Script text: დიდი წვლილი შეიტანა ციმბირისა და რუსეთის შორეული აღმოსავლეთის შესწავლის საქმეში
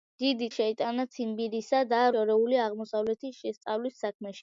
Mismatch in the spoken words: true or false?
true